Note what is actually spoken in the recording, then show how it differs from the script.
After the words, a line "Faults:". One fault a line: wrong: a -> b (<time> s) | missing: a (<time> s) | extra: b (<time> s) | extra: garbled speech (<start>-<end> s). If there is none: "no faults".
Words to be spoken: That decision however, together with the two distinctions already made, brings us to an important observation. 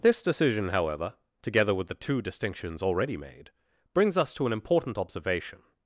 This decision however, together with the two distinctions already made, brings us to an important observation.
Faults:
wrong: That -> This (0.0 s)